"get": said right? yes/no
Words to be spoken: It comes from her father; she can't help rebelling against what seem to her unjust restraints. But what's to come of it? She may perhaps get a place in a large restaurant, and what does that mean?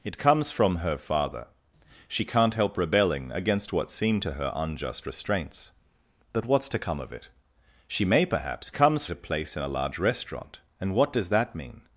no